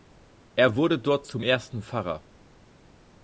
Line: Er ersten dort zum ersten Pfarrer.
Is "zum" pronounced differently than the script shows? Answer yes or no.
no